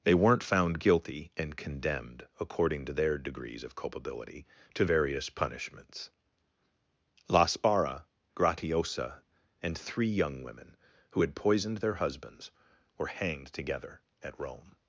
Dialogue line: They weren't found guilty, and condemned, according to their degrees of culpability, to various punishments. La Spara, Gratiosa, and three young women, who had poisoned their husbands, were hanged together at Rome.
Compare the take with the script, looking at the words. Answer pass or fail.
pass